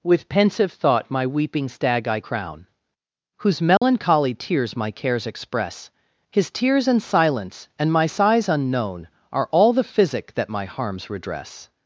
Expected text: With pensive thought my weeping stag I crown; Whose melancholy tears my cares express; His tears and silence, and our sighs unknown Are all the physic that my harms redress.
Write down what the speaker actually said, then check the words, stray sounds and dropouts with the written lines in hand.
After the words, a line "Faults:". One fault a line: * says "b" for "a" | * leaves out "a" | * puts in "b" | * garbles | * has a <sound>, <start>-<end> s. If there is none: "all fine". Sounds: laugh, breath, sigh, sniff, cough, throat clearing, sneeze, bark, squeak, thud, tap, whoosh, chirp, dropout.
With pensive thought my weeping stag I crown; Whose melancholy tears my cares express; His tears and silence, and my sighs unknown Are all the physic that my harms redress.
Faults:
* has a dropout, 3.8-3.8 s
* says "my" for "our"